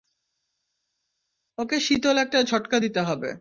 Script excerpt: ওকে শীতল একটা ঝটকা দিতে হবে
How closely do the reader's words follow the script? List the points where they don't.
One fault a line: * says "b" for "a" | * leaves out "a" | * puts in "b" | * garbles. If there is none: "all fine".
all fine